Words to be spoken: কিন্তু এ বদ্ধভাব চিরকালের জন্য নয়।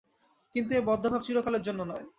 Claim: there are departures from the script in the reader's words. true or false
false